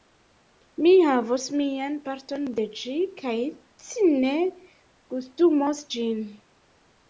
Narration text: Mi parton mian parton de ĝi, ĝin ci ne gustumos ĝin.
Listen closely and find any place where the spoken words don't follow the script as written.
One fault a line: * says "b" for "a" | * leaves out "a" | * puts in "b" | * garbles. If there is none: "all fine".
* says "havos" for "parton"
* says "kaj" for "ĝin"